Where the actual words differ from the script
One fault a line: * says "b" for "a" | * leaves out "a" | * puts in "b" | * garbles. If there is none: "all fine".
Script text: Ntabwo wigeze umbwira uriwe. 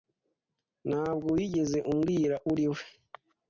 all fine